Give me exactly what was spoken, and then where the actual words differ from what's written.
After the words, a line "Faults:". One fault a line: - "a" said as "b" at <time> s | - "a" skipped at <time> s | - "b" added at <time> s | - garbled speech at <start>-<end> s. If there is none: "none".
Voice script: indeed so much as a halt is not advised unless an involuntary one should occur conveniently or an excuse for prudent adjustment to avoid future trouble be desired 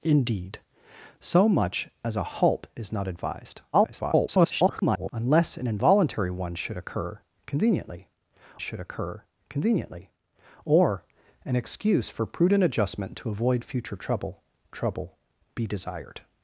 indeed so much as a halt is not advised [garbled] unless an involuntary one should occur conveniently should occur conveniently or an excuse for prudent adjustment to avoid future trouble trouble be desired
Faults:
- garbled speech at 3.7-5.1 s
- "should occur conveniently" added at 8.6 s
- "trouble" added at 14.7 s